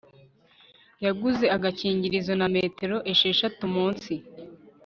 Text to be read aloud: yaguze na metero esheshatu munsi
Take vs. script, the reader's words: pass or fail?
fail